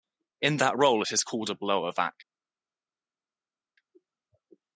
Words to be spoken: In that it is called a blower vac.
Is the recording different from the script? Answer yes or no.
yes